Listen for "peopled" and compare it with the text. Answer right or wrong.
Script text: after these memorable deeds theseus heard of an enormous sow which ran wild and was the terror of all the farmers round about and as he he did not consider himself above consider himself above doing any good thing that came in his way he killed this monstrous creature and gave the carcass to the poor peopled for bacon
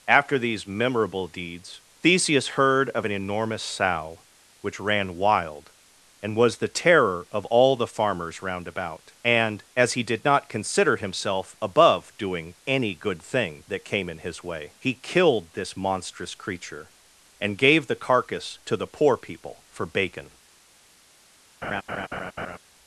wrong